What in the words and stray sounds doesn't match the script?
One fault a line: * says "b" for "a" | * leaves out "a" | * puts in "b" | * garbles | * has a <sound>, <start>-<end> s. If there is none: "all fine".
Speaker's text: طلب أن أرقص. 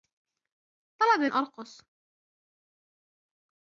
all fine